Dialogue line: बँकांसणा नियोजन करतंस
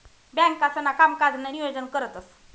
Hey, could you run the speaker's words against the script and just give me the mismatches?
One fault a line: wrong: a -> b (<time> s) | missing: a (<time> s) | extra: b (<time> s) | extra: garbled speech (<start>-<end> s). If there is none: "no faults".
extra: कामकाजनं (0.9 s)